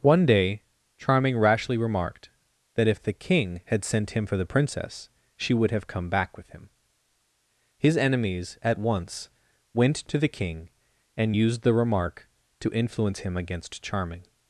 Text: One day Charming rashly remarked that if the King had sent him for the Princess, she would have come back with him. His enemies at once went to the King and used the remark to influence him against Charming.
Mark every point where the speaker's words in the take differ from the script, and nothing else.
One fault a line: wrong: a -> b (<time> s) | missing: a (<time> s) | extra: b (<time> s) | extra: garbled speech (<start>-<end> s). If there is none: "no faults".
no faults